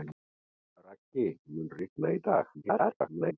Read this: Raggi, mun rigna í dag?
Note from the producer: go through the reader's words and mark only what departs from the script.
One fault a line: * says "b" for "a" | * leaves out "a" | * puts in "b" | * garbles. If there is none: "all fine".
* garbles